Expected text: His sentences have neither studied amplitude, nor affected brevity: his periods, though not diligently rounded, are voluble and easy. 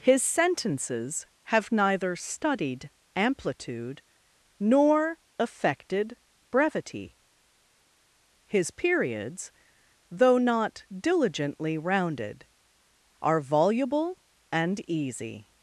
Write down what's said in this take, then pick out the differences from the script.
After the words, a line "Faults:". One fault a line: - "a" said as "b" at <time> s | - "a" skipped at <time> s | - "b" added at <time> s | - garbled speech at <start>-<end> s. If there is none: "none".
His sentences have neither studied amplitude, nor affected brevity: his periods, though not diligently rounded, are voluble and easy.
Faults:
none